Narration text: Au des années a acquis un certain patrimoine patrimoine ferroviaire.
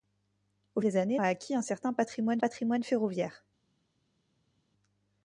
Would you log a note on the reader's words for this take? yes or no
no